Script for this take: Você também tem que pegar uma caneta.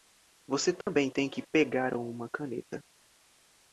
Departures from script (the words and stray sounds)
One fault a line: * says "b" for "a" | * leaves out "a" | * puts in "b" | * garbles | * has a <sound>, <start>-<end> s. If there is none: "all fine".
* has a dropout, 0.8-0.9 s